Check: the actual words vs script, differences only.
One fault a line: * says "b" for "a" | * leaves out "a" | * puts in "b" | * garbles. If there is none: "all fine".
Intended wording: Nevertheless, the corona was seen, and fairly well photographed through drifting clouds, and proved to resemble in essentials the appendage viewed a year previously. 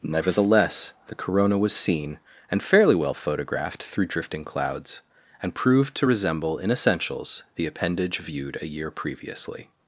all fine